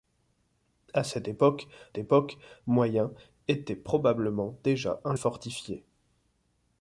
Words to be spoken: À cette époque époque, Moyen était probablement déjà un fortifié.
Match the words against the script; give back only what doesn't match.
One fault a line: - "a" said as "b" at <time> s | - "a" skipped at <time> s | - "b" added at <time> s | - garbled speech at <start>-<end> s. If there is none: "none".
none